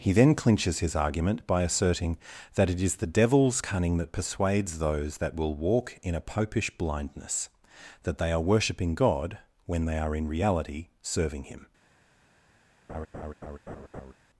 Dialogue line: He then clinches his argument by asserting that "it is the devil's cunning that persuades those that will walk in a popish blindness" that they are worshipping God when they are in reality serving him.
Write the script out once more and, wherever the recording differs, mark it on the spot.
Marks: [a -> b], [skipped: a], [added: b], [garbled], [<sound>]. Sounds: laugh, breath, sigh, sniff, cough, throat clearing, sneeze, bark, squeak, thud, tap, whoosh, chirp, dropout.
He then clinches his argument by asserting that "it is the devil's cunning that persuades those that will walk in a popish blindness" that they are worshipping God when they are in reality serving him. [laugh]